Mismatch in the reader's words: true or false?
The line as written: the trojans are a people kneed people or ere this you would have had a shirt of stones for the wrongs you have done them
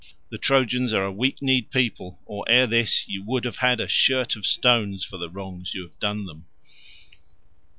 true